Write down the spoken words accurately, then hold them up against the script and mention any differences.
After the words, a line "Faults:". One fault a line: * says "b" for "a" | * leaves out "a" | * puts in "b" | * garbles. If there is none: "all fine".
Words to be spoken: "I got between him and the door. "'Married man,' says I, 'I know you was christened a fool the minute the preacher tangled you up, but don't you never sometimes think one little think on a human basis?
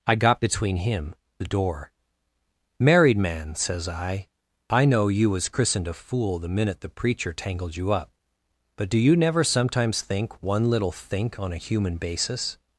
"I got between him the door. "'Married man,' says I, 'I know you was christened a fool the minute the preacher tangled you up, but do you never sometimes think one little think on a human basis?
Faults:
* leaves out "and"
* says "do" for "don't"